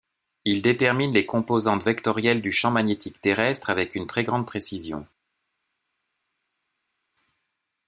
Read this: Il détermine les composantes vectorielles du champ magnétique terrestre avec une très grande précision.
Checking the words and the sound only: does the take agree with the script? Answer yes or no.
yes